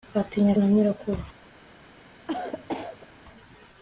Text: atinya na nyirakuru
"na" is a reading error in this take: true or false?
false